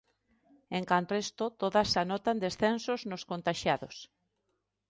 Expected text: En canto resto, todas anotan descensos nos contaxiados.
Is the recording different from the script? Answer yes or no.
no